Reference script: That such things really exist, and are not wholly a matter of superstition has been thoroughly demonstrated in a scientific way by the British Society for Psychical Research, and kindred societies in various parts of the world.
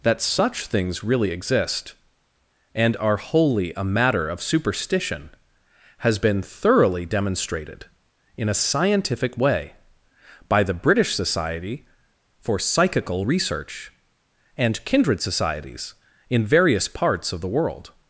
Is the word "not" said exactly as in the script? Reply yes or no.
no